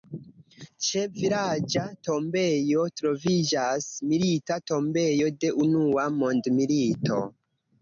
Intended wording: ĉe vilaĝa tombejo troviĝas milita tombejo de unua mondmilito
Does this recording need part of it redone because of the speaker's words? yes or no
no